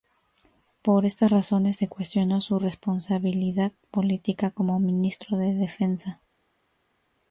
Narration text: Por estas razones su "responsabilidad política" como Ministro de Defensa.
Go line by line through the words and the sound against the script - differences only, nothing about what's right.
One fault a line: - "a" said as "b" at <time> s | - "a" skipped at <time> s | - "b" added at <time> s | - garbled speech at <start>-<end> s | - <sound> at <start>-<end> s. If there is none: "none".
- "se cuestionó" added at 1.7 s